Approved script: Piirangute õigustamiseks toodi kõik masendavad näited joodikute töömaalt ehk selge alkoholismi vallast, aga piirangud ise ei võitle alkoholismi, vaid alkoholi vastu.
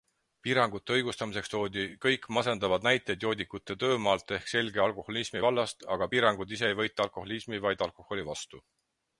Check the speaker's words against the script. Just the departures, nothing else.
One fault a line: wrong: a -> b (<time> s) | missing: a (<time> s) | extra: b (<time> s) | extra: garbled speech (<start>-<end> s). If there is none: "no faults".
no faults